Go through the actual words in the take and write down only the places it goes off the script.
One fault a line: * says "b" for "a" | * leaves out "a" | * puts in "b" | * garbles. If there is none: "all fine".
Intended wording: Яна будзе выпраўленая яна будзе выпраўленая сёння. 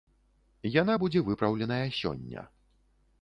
* leaves out "яна будзе выпраўленая"